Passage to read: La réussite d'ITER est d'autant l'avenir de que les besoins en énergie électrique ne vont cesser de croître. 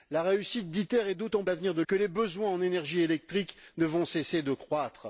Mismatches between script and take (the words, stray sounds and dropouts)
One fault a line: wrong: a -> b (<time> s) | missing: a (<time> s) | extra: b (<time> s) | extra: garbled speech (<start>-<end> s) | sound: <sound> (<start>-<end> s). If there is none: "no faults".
no faults